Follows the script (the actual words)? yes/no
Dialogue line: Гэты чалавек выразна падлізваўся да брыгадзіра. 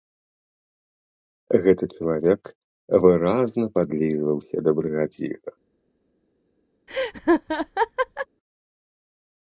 yes